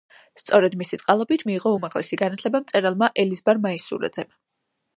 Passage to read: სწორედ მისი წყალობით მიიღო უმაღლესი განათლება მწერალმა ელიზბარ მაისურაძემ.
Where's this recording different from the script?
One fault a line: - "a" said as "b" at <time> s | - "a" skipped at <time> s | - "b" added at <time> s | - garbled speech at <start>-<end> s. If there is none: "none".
none